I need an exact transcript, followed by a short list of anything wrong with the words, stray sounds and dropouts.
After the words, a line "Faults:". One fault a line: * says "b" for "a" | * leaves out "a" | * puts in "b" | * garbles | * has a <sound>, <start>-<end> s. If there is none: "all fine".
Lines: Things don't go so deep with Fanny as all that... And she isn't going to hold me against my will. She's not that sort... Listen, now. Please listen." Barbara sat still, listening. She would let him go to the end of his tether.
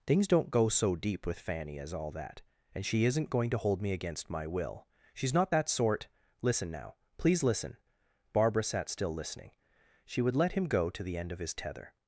Things don't go so deep with Fanny as all that... And she isn't going to hold me against my will. She's not that sort... Listen, now. Please listen." Barbara sat still, listening. She would let him go to the end of his tether.
Faults:
all fine